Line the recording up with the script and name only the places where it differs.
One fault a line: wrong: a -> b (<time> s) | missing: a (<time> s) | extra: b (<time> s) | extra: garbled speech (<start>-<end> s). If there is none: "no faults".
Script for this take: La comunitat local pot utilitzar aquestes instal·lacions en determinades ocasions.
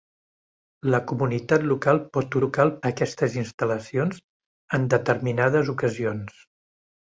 wrong: utilitzar -> local (2.4 s)